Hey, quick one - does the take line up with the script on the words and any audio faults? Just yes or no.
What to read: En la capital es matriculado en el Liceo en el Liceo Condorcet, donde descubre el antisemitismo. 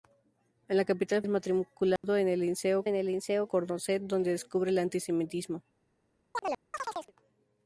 no